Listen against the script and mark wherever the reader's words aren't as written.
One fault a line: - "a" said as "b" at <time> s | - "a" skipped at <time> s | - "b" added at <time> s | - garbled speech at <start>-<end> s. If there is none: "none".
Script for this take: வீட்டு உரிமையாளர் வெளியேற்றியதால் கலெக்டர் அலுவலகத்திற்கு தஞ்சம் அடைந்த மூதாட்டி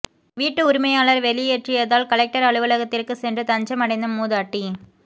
- "சென்று" added at 3.2 s